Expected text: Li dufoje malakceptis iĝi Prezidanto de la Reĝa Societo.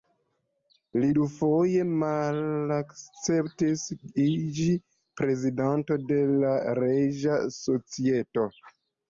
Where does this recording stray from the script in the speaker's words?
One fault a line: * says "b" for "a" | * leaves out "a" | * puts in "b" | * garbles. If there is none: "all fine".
all fine